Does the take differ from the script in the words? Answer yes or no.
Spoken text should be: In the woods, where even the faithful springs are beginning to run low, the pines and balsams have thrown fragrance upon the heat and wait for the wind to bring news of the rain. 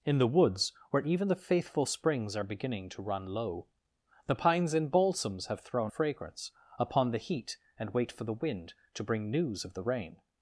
no